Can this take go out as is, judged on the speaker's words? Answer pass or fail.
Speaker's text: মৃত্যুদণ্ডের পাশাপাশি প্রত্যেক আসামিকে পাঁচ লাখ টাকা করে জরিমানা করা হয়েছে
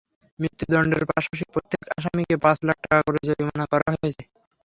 pass